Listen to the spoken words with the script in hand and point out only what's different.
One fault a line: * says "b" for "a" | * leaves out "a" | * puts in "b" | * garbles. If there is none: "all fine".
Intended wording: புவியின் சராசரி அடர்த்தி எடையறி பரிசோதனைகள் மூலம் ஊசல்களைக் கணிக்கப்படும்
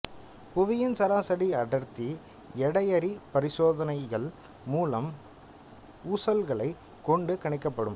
* puts in "கொண்டு"